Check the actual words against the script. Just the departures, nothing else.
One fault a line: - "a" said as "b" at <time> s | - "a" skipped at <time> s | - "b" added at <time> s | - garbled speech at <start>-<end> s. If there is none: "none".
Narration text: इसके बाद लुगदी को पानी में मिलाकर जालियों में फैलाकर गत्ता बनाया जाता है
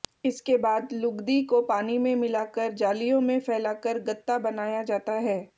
none